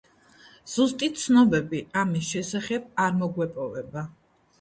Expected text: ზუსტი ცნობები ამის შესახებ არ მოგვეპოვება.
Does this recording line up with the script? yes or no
yes